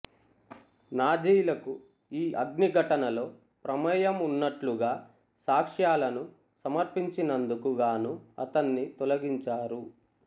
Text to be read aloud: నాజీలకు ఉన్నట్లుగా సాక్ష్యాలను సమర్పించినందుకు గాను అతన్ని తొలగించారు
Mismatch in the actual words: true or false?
true